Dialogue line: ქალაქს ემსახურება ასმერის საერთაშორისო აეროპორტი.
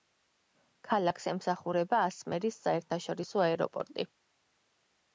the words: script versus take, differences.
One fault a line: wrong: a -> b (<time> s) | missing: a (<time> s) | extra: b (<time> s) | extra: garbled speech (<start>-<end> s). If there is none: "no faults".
no faults